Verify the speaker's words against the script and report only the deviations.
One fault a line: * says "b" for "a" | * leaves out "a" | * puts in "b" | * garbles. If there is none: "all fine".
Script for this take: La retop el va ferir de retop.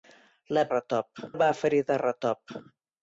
all fine